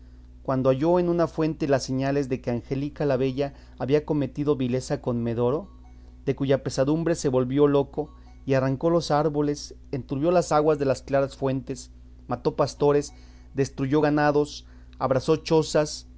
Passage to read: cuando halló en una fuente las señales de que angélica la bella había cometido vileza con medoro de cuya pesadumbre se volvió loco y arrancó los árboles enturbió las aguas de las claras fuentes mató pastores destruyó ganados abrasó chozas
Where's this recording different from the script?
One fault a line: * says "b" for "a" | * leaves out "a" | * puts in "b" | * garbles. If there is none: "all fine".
all fine